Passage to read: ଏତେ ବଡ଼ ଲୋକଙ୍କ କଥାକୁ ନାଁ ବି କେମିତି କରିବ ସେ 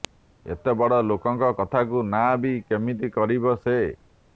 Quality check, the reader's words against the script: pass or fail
pass